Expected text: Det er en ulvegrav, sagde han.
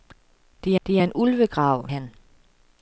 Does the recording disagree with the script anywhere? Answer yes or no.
yes